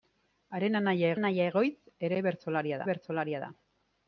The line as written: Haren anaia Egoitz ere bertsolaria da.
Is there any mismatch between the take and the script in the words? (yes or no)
yes